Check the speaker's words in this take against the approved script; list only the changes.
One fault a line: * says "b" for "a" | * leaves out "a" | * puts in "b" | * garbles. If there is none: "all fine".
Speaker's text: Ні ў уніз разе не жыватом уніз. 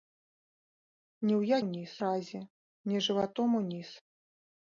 all fine